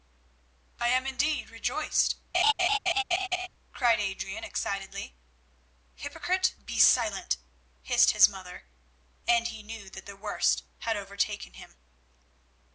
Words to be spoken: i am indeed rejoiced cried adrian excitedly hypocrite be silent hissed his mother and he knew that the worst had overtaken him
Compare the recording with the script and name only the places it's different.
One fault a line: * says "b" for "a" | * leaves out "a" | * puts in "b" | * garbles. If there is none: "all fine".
all fine